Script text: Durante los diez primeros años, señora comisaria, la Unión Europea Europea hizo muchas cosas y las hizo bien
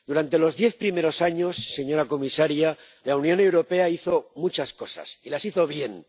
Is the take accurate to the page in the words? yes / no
no